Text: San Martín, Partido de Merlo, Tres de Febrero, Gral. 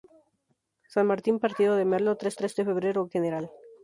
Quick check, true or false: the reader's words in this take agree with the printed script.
false